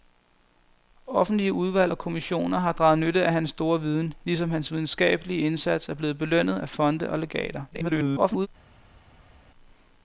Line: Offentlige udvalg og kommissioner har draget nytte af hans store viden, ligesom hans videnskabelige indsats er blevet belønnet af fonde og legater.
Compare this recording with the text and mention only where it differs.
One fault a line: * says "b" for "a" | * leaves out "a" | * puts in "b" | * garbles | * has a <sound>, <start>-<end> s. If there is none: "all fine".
* garbles